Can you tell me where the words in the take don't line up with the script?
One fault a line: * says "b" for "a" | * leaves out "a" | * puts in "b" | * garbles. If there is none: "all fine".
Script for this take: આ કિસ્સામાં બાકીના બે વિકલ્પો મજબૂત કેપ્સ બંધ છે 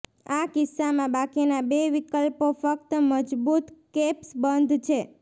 * puts in "ફક્ત"